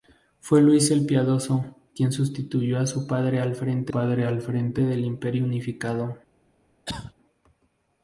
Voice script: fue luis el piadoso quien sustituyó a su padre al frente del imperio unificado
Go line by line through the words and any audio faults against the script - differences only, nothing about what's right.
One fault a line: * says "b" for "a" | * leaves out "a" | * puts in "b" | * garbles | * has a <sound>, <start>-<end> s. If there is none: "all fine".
* puts in "padre al frente"
* has a cough, 6.9-7.1 s